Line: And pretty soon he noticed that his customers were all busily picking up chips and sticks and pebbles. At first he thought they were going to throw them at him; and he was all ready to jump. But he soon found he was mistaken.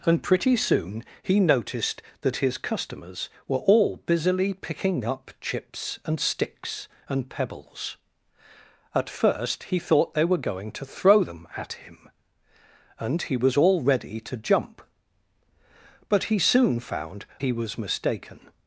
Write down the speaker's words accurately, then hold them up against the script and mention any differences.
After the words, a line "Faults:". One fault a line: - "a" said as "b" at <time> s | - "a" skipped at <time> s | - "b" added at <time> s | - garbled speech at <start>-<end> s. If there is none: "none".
And pretty soon he noticed that his customers were all busily picking up chips and sticks and pebbles. At first he thought they were going to throw them at him; and he was all ready to jump. But he soon found he was mistaken.
Faults:
none